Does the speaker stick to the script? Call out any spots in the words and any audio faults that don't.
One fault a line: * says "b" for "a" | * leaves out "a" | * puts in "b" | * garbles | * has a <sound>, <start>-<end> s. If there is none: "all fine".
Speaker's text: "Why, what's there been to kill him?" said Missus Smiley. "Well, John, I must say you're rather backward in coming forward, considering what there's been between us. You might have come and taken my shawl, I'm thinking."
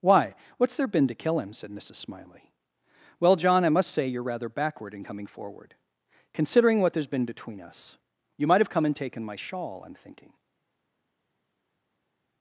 all fine